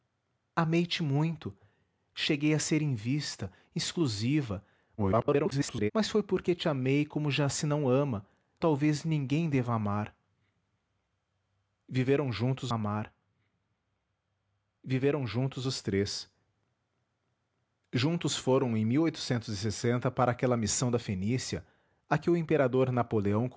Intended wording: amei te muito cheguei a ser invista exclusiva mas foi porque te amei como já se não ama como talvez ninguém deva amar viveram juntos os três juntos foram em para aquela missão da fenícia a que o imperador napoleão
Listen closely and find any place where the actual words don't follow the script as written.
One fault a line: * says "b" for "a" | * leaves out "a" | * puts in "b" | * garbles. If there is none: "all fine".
* garbles
* leaves out "como"
* puts in "amar viveram juntos"